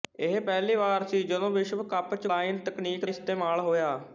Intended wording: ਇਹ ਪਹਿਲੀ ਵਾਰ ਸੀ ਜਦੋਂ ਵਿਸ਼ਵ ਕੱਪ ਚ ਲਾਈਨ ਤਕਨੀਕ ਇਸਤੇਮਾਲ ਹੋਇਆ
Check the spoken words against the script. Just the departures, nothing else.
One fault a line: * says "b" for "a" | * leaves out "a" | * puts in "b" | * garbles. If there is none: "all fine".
all fine